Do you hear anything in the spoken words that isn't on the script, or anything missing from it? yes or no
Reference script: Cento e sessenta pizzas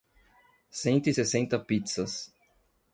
no